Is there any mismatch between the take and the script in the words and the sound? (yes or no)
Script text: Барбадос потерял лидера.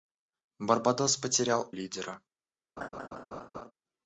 yes